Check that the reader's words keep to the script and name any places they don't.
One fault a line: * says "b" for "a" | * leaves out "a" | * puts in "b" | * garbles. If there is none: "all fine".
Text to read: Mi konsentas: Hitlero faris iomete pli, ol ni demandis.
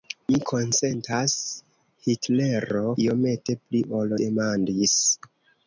* leaves out "faris"
* leaves out "ni"